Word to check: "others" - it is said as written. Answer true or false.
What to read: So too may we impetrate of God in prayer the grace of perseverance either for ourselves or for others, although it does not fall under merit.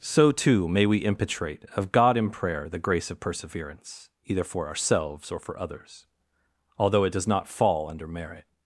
true